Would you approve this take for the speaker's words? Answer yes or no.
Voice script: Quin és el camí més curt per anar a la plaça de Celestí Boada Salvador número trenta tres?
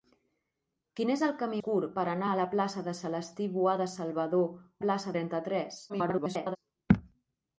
no